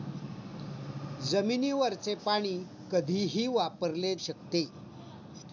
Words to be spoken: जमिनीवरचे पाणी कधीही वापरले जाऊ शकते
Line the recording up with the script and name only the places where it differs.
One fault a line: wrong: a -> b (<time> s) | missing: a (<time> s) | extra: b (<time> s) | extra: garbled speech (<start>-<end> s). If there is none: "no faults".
missing: जाऊ (4.2 s)